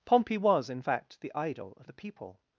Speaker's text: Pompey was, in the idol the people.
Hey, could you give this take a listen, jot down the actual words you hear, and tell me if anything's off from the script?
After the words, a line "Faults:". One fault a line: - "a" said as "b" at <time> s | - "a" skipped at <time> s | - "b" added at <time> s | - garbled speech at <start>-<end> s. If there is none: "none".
Pompey was, in fact, the idol of the people.
Faults:
- "fact" added at 0.8 s
- "of" added at 1.8 s